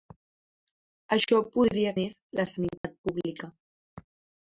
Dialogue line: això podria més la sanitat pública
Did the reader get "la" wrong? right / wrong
right